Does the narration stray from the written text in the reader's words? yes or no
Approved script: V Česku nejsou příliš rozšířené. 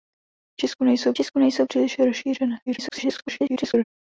yes